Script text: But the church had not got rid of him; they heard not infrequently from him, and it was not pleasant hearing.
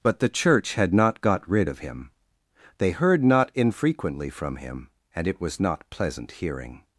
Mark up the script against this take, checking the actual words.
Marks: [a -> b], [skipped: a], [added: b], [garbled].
But the church had not got rid of him; they heard not infrequently from him, and it was not pleasant hearing.